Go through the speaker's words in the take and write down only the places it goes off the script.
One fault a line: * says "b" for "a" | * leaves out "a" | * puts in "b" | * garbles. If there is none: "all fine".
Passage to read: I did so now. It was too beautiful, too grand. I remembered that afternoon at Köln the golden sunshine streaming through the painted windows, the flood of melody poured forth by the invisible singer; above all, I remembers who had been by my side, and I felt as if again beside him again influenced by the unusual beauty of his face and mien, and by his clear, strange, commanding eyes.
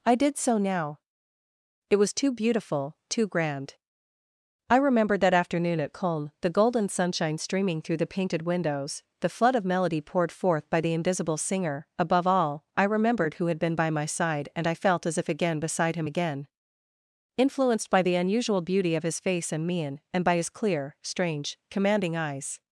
* says "remembered" for "remembers"